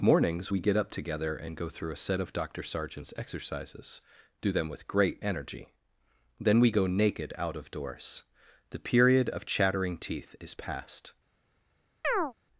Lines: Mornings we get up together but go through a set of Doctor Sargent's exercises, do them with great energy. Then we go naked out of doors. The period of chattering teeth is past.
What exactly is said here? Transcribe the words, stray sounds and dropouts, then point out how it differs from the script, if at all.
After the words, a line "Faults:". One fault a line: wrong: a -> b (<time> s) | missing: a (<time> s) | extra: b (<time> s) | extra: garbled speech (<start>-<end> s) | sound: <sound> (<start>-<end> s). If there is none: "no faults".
Mornings we get up together and go through a set of Doctor Sargent's exercises, do them with great energy. Then we go naked out of doors. The period of chattering teeth is past.
Faults:
wrong: but -> and (1.3 s)
sound: chirp (12.0-12.3 s)